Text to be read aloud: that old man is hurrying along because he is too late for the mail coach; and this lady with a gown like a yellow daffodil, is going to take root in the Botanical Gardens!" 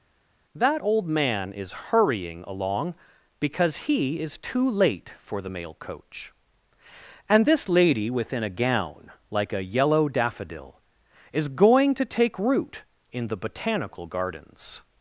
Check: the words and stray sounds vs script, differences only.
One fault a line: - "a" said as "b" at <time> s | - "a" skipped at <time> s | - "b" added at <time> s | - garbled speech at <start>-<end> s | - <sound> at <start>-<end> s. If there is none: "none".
- "with" said as "within" at 8.1 s